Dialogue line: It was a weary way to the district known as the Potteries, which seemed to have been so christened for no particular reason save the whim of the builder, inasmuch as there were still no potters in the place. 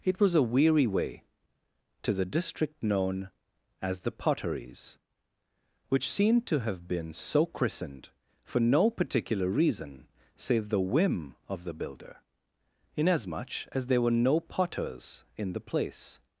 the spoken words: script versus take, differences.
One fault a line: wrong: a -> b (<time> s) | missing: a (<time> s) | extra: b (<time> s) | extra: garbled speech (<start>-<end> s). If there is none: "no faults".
missing: still (14.2 s)